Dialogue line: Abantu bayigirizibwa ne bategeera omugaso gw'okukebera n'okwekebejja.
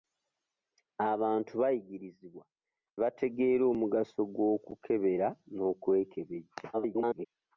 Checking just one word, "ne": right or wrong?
wrong